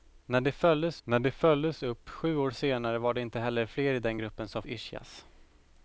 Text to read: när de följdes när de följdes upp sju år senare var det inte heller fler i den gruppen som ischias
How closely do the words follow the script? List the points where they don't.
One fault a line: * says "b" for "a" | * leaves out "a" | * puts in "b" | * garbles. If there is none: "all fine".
all fine